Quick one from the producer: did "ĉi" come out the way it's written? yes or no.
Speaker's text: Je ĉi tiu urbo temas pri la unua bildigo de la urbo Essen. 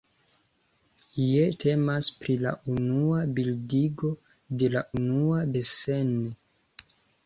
no